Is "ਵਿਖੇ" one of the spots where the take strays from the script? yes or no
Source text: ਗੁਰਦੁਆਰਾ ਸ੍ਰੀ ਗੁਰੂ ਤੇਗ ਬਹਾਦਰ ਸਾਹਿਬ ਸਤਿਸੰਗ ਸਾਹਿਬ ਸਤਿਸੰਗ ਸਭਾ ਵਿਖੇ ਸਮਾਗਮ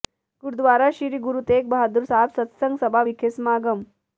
no